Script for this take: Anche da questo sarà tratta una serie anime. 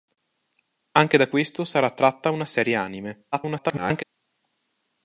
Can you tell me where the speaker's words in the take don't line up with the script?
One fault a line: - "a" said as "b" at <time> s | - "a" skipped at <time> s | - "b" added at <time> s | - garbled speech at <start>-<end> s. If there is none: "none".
- garbled speech at 3.3-4.0 s